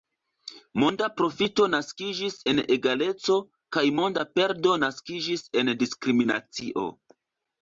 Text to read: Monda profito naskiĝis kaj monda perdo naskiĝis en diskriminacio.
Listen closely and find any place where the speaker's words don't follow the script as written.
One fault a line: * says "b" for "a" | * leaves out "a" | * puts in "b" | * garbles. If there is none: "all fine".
* puts in "en egaleco"